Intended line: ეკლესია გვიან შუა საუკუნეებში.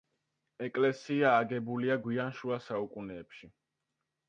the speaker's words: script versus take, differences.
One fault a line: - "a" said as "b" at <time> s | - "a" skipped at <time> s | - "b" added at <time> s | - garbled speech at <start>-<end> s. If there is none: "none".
- "აგებულია" added at 1.4 s